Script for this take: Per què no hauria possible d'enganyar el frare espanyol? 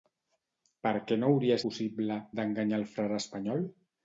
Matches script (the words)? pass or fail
pass